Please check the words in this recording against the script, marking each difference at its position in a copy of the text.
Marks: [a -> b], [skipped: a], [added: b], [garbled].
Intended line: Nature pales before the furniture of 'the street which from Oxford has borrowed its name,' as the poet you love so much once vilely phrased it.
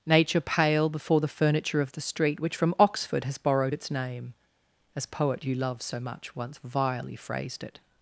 Nature [pales -> pale] before the furniture of 'the street which from Oxford has borrowed its name,' as [skipped: the] poet you love so much once vilely phrased it.